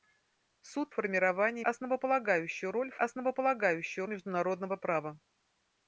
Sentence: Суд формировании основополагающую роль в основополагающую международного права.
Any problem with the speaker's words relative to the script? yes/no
no